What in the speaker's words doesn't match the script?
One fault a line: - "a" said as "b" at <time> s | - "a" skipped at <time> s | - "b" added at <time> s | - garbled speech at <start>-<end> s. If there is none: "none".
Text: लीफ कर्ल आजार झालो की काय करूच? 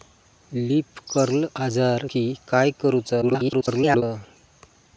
- "झालो" skipped at 2.1 s
- garbled speech at 3.2-4.0 s